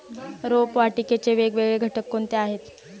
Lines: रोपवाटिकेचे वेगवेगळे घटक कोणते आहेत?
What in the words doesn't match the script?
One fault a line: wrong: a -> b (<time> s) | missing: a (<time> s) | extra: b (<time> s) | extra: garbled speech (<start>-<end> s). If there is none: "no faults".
no faults